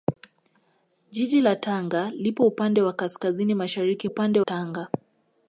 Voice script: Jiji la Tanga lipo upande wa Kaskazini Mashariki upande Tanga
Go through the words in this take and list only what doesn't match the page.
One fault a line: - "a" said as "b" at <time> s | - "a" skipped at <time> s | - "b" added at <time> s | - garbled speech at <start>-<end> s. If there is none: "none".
none